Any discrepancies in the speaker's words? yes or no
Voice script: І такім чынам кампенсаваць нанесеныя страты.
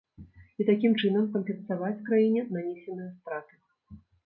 yes